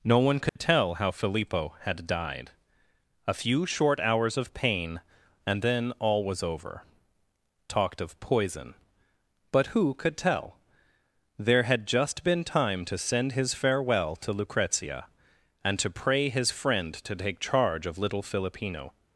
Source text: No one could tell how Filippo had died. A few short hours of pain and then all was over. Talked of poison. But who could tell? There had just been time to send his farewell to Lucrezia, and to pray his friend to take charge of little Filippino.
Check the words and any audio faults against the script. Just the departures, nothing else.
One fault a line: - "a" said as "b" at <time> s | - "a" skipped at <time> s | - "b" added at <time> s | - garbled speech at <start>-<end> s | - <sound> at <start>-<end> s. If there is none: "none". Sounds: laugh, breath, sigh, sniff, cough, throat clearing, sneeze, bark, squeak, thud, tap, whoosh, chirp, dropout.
- dropout at 0.5-0.6 s